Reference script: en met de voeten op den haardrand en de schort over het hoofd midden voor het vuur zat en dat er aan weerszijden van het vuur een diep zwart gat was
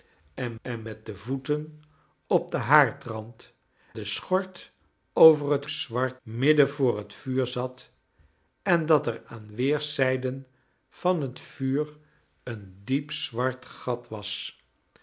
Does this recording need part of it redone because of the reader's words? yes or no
yes